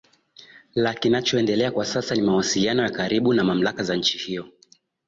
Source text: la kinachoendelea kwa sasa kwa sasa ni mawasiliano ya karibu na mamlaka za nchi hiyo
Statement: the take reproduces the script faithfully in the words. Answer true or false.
false